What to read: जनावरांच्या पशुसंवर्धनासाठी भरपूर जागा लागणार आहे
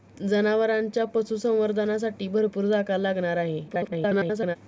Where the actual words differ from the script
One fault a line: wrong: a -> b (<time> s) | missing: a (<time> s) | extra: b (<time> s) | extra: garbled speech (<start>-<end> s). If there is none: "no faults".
extra: garbled speech (3.7-4.6 s)